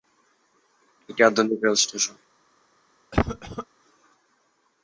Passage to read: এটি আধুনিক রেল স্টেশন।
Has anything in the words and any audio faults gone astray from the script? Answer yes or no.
yes